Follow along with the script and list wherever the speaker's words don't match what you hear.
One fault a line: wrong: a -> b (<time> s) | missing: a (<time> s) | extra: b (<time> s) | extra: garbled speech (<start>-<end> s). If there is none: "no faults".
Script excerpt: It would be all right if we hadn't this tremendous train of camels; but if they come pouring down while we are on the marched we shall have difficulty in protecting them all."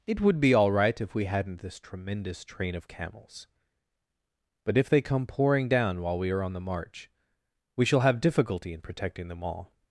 wrong: marched -> march (6.6 s)